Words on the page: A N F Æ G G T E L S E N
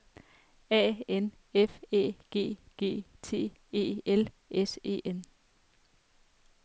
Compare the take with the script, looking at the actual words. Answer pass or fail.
pass